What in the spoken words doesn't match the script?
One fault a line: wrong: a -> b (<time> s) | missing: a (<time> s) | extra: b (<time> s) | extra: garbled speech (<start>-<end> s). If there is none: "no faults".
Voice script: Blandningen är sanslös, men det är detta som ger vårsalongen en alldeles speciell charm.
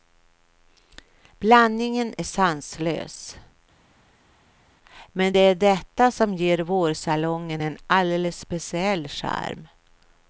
no faults